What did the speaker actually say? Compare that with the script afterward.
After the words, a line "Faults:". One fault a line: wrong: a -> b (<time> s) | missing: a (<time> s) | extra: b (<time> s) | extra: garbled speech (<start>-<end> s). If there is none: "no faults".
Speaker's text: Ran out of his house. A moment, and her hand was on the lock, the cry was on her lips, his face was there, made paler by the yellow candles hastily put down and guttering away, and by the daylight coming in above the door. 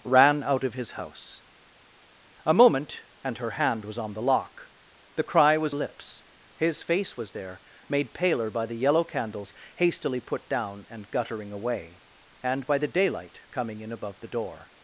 Ran out of his house. A moment, and her hand was on the lock, the cry was lips, his face was there, made paler by the yellow candles hastily put down and guttering away, and by the daylight coming in above the door.
Faults:
missing: on her (5.8 s)